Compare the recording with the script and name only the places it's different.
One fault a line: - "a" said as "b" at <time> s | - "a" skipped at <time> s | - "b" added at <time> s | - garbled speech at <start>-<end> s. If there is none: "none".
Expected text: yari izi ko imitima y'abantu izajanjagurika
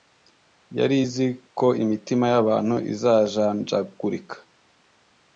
none